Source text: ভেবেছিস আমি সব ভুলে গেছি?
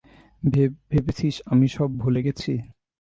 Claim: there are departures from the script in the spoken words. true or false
false